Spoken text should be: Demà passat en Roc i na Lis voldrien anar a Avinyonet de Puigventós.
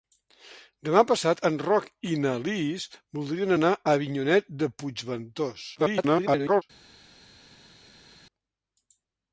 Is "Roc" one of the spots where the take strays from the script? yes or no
no